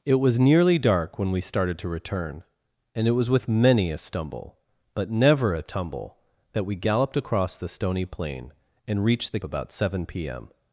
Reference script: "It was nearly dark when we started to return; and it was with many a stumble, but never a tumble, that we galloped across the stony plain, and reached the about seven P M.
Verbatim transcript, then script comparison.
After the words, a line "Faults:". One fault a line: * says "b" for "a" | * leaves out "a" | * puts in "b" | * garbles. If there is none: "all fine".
"It was nearly dark when we started to return; and it was with many a stumble, but never a tumble, that we galloped across the stony plain, and reached the about seven P M.
Faults:
all fine